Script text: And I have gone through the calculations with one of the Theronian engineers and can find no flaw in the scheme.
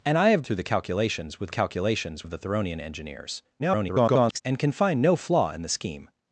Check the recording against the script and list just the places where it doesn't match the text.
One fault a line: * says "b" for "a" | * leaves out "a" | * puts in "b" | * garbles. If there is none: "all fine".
* leaves out "gone"
* says "calculations" for "one"
* garbles